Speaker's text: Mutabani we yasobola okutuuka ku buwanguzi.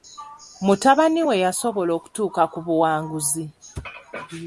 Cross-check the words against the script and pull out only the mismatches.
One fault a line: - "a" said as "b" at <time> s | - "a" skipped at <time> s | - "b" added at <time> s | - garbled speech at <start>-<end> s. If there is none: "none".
none